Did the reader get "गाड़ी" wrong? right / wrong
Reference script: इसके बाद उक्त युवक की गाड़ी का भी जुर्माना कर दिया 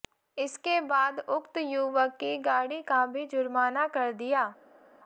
right